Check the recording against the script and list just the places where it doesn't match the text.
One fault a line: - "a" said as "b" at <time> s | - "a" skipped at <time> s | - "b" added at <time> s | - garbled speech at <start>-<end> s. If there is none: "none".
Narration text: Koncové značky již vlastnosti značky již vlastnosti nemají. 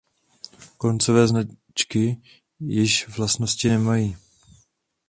- "značky již vlastnosti" skipped at 3.7 s